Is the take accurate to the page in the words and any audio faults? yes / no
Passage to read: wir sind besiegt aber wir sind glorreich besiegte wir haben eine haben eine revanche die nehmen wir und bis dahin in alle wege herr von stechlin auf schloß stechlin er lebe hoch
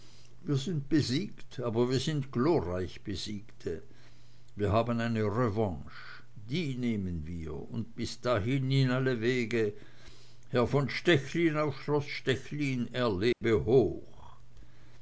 no